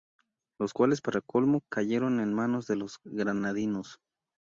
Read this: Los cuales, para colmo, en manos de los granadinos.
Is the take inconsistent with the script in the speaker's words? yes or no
yes